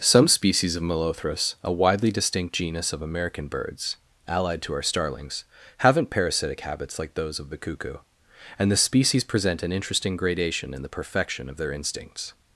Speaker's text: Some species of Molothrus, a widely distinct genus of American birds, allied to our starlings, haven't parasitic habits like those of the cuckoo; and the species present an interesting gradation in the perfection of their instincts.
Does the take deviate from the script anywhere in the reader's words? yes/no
no